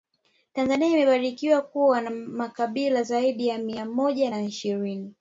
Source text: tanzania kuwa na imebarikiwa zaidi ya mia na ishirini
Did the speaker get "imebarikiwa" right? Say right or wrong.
wrong